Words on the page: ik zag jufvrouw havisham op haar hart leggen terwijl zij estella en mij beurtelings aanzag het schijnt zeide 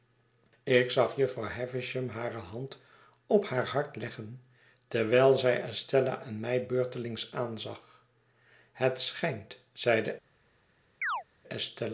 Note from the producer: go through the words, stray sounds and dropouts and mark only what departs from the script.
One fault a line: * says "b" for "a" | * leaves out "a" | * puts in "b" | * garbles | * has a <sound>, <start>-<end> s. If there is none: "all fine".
* puts in "hare hand"
* has a chirp, 11.0-11.2 s